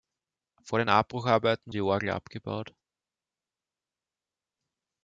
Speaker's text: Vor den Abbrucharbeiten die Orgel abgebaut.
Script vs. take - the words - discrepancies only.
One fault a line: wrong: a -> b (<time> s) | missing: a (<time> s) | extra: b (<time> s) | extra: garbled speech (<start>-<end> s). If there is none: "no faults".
no faults